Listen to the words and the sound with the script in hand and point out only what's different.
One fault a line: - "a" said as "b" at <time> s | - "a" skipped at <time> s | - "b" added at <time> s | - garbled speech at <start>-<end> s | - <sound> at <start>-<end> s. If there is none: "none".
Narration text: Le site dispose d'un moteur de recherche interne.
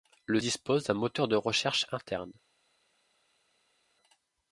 - "site" skipped at 0.4 s